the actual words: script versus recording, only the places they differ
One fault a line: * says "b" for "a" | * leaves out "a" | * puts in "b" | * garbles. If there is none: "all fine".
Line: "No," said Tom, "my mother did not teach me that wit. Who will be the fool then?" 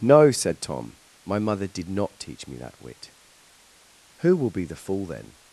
all fine